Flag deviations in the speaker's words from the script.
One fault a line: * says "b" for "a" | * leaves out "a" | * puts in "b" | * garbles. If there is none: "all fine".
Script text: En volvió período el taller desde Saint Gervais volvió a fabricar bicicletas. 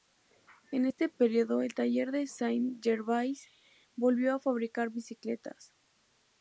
* says "este" for "volvió"
* says "de" for "desde"